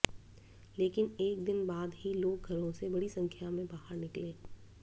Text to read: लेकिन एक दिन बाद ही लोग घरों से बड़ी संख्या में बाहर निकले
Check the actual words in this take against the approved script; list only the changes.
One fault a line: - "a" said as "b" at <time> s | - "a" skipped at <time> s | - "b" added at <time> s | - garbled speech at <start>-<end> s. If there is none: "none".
none